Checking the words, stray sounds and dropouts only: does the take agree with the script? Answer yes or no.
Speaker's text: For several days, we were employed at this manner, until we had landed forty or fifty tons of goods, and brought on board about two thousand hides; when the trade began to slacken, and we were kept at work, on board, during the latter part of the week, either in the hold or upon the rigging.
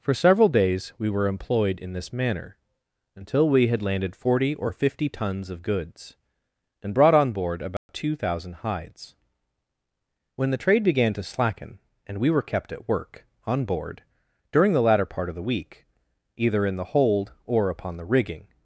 no